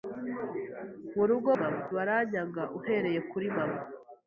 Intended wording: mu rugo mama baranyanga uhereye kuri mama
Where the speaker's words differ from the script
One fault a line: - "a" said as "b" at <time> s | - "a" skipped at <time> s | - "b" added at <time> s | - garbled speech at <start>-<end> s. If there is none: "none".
none